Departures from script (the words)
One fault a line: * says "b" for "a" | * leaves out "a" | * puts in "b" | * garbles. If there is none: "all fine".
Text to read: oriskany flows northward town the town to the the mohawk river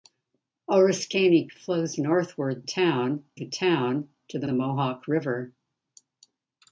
all fine